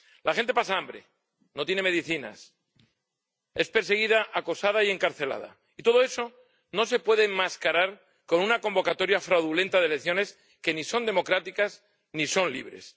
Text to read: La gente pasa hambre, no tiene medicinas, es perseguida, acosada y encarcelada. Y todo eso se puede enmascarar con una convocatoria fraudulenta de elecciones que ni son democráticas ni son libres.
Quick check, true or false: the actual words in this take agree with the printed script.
false